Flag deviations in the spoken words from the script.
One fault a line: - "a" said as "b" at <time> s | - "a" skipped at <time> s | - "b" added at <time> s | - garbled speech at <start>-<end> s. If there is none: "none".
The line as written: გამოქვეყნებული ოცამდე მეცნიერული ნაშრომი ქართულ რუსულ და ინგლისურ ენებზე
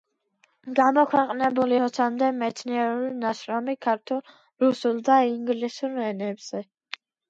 none